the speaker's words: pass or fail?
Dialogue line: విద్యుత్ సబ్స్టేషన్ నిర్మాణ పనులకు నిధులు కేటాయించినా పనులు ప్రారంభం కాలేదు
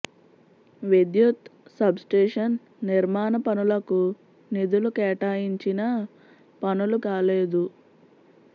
fail